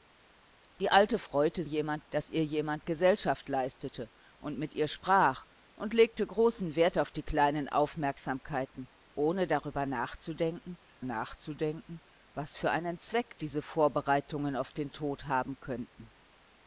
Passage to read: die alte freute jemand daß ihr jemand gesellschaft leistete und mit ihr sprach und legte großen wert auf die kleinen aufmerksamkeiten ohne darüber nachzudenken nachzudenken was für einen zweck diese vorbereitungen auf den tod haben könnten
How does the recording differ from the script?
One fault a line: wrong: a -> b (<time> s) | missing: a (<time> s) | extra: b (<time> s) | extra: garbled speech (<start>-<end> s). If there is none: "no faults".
no faults